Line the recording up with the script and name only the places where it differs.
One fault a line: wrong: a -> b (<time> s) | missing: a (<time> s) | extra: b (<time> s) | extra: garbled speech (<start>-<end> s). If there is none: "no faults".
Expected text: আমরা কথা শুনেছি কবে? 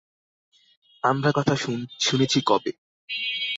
no faults